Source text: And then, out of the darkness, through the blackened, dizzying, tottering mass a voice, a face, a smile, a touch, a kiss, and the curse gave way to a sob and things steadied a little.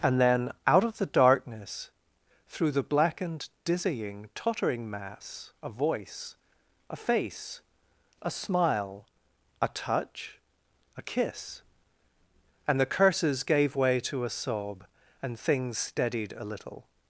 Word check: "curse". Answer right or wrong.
wrong